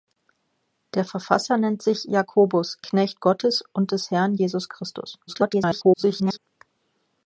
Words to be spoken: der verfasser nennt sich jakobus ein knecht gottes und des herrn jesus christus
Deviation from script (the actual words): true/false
true